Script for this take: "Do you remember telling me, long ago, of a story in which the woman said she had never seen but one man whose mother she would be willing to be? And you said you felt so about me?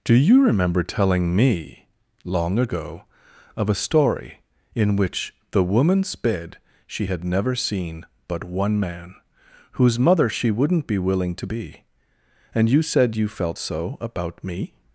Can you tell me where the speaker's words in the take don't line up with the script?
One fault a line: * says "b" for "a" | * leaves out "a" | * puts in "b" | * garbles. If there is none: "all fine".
* says "sped" for "said"
* says "wouldn't" for "would"